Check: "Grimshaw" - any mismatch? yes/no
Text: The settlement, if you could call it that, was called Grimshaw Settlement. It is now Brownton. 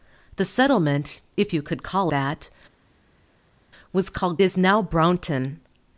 yes